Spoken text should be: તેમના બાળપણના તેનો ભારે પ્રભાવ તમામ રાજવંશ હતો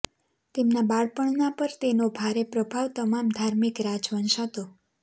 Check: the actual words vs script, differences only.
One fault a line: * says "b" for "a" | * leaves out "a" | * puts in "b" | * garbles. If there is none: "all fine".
* puts in "પર"
* puts in "ધાર્મિક"